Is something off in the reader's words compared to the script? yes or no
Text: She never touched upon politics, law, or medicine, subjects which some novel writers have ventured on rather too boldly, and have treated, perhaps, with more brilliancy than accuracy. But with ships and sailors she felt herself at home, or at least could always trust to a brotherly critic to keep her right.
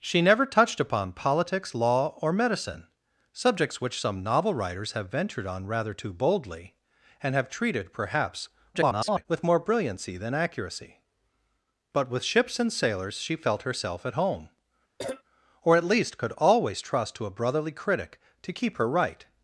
yes